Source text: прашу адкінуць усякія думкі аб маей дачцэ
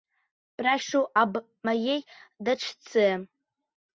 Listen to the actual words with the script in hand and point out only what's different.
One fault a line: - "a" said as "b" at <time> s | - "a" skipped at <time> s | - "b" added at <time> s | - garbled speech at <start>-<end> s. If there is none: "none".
- "адкінуць усякія думкі" skipped at 1.0 s